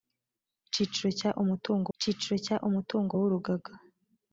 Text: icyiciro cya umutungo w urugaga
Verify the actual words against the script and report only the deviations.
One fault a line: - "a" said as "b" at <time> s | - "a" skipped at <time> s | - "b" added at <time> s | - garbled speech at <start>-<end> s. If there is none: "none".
- "icyiciro cya umutungo" added at 1.9 s